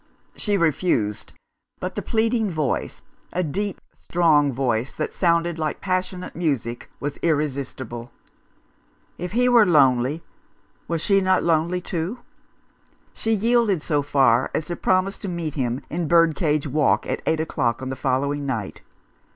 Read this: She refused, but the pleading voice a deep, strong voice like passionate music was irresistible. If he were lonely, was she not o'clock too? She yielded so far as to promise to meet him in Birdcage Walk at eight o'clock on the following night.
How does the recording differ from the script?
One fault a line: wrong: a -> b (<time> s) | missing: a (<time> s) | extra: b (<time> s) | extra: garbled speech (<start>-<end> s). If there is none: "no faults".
extra: that sounded (4.9 s)
wrong: o'clock -> lonely (11.4 s)